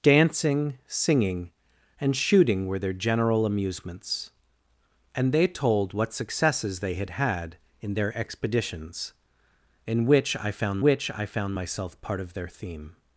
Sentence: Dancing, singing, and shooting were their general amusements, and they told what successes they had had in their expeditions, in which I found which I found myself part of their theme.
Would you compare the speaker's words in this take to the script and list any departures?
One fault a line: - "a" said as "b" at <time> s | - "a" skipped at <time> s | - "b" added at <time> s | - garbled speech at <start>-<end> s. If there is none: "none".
none